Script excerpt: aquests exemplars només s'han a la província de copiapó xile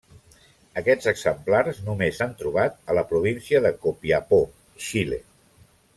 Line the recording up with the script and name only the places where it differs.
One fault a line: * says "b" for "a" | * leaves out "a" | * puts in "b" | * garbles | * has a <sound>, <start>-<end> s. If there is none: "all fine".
* puts in "trobat"